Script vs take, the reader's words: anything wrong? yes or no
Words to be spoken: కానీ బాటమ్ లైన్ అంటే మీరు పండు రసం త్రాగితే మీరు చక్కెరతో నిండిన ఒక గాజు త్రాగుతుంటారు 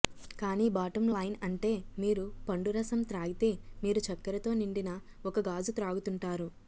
no